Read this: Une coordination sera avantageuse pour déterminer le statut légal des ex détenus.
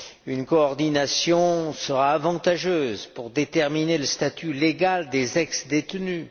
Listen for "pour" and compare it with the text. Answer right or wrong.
right